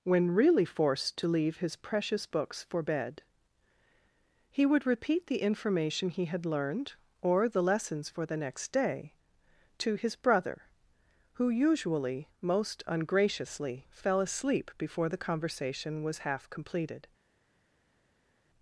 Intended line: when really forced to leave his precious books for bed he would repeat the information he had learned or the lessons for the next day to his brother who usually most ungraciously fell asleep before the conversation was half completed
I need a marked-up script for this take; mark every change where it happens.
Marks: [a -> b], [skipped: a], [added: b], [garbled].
when really forced to leave his precious books for bed he would repeat the information he had learned or the lessons for the next day to his brother who usually most ungraciously fell asleep before the conversation was half completed